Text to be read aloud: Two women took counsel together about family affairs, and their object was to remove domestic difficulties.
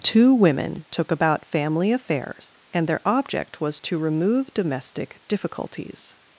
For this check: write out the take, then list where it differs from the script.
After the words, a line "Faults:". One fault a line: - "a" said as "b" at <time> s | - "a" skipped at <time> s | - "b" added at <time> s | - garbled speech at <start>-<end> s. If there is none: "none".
Two women took about family affairs, and their object was to remove domestic difficulties.
Faults:
- "counsel together" skipped at 1.1 s